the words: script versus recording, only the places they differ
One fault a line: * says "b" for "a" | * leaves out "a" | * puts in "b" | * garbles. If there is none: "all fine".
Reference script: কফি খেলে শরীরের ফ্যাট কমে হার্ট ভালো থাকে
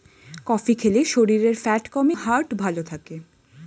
all fine